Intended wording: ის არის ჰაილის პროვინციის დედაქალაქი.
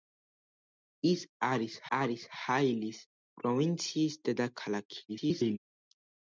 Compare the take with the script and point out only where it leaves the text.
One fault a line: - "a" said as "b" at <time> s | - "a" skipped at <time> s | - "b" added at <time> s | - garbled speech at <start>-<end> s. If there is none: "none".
- "არის" added at 2.0 s
- garbled speech at 5.1-5.6 s